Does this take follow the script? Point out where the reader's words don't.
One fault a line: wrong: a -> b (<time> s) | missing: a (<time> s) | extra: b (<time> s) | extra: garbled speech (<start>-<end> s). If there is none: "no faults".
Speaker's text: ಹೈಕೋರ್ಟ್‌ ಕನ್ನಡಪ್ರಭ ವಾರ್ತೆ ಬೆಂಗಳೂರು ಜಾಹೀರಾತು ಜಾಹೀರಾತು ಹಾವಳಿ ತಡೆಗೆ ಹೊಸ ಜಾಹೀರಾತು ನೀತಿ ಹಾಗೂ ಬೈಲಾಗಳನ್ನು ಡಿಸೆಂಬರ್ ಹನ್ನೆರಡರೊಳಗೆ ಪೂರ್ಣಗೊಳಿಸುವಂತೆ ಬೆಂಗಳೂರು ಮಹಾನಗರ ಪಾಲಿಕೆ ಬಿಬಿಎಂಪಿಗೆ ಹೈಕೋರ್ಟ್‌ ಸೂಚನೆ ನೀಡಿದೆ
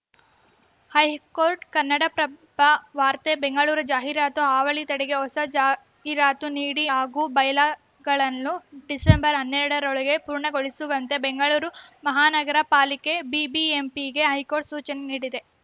missing: ಜಾಹೀರಾತು (4.4 s)